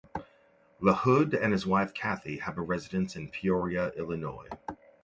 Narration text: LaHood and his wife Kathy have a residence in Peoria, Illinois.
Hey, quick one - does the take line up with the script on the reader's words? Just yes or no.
yes